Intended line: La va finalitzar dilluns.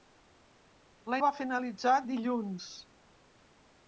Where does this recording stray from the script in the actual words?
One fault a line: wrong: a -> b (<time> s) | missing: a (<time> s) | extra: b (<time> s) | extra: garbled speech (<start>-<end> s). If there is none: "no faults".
no faults